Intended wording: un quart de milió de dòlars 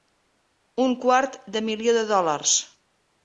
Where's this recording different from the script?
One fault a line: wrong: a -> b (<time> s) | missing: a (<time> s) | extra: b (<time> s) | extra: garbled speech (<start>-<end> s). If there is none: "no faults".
no faults